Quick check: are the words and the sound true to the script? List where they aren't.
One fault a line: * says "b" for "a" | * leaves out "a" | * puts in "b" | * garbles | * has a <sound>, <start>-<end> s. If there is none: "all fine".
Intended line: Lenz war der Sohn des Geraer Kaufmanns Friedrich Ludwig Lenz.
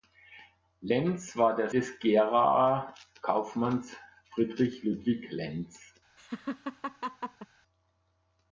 * leaves out "Sohn"
* has a laugh, 6.2-7.5 s